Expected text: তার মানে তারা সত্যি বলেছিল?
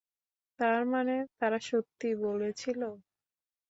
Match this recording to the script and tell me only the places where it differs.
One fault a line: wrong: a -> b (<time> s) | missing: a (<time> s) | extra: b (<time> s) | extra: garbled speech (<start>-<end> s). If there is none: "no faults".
no faults